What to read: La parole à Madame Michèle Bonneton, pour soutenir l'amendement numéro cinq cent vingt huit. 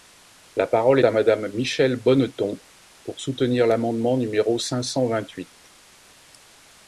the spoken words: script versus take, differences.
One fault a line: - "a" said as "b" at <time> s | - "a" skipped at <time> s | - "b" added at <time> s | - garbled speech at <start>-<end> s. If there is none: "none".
none